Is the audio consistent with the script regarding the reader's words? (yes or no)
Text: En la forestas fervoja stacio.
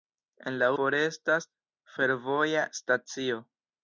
yes